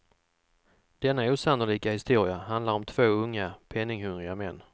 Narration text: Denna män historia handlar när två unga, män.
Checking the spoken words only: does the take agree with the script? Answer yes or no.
no